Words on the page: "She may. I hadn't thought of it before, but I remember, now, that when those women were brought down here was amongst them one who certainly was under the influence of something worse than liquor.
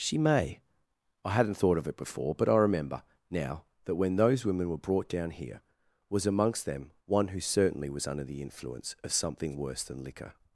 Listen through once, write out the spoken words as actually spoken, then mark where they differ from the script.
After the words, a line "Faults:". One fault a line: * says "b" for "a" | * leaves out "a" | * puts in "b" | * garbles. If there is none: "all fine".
"She may. I hadn't thought of it before, but I remember, now, that when those women were brought down here was amongst them one who certainly was under the influence of something worse than liquor.
Faults:
all fine